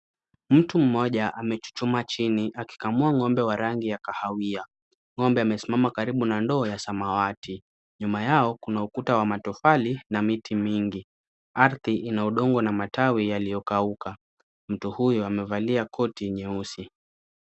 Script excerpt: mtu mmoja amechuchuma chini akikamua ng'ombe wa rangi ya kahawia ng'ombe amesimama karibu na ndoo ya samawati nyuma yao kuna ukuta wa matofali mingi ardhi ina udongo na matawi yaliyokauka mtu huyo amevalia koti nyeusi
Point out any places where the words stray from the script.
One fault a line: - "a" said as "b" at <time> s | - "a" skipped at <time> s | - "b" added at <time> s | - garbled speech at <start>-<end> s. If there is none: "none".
- "na miti" added at 10.1 s